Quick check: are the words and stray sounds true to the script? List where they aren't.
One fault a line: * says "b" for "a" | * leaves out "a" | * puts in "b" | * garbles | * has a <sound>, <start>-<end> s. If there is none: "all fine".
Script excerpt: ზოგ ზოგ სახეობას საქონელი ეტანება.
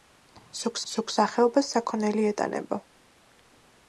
all fine